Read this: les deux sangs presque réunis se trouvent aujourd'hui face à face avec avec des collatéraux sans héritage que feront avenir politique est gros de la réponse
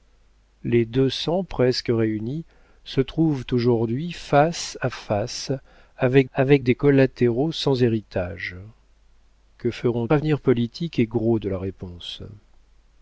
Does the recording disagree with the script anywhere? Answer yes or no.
no